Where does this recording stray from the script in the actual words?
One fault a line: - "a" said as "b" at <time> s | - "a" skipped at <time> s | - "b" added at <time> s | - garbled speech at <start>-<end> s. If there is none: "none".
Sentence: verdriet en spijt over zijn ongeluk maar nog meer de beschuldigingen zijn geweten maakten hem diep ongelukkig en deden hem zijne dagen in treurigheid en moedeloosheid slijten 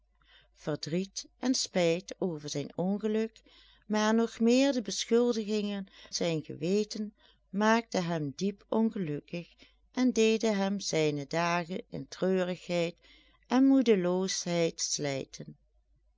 none